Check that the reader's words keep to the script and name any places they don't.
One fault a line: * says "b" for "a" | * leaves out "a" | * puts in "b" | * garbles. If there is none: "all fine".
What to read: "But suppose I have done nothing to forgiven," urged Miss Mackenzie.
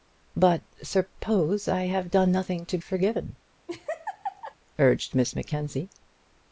all fine